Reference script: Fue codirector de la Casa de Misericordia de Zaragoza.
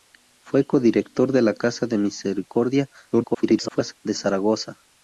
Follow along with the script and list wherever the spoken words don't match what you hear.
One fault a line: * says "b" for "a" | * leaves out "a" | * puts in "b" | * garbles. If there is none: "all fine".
* garbles